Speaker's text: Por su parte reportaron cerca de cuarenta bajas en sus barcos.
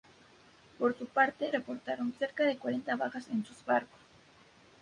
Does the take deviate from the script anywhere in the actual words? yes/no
no